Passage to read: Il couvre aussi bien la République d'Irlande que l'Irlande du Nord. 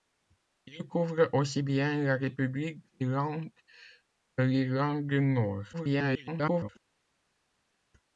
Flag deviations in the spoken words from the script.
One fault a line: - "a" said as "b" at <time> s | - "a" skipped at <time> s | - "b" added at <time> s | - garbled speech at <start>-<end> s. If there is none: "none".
- garbled speech at 5.7-6.7 s